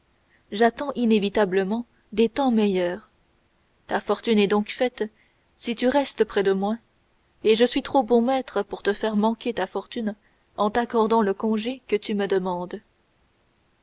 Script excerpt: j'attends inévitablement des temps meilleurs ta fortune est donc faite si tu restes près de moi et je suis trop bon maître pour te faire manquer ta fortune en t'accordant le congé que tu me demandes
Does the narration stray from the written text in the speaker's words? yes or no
no